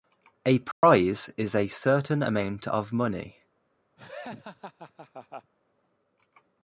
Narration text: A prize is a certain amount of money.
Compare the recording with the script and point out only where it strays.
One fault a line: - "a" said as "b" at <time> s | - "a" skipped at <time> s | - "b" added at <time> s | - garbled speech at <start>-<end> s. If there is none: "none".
none